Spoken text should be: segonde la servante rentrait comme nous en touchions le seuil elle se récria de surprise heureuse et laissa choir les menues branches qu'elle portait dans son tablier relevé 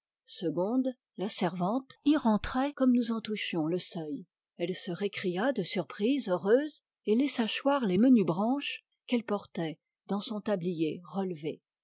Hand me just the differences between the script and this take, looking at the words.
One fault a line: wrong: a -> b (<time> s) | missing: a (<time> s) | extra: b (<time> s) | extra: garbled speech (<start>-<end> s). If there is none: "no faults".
extra: y (2.0 s)